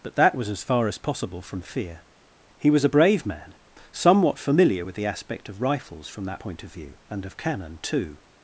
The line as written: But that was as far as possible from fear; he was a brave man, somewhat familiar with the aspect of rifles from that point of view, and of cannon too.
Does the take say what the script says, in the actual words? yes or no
yes